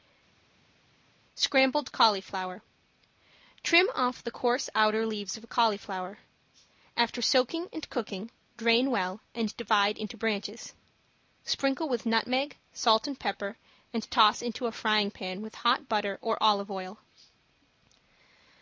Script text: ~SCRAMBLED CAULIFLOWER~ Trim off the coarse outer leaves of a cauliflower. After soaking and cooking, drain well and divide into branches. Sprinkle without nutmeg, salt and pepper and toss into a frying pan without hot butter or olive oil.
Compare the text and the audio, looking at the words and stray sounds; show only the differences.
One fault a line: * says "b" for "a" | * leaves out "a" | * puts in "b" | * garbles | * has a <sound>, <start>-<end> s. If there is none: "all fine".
* says "with" for "without"
* says "with" for "without"